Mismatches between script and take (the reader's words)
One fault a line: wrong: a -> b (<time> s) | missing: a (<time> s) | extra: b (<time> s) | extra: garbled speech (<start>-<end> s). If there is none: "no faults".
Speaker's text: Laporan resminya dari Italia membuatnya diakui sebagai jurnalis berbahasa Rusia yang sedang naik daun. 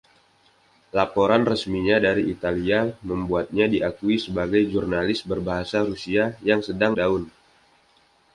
missing: naik (7.0 s)